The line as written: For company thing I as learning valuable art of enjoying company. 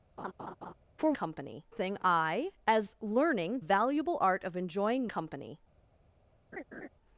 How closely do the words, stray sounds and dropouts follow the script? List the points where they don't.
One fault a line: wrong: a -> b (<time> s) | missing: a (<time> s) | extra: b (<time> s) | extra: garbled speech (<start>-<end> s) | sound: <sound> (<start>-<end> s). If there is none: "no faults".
sound: laugh (0.2-0.7 s)
sound: laugh (6.5-6.9 s)